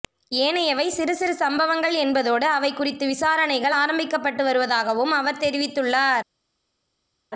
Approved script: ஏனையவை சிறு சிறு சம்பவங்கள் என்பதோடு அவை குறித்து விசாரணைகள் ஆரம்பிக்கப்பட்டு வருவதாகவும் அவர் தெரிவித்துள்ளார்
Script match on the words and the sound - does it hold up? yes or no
yes